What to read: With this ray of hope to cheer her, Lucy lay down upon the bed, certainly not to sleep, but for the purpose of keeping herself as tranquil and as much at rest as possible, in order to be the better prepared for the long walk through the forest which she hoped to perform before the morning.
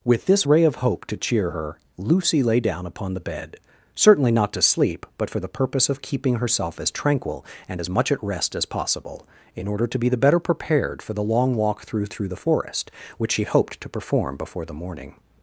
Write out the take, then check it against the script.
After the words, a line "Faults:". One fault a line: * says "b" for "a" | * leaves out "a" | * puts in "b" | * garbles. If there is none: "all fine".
With this ray of hope to cheer her, Lucy lay down upon the bed, certainly not to sleep, but for the purpose of keeping herself as tranquil and as much at rest as possible, in order to be the better prepared for the long walk through through the forest which she hoped to perform before the morning.
Faults:
* puts in "through"